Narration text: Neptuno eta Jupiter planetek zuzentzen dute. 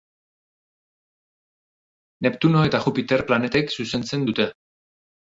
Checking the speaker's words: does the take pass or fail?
pass